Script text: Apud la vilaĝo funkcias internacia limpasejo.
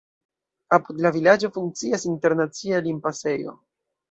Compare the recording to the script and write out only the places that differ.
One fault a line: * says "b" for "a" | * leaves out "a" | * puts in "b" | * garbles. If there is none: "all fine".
all fine